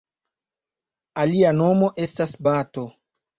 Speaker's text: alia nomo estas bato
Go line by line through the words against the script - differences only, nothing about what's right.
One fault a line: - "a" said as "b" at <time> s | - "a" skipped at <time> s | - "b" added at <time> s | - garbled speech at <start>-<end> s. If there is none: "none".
none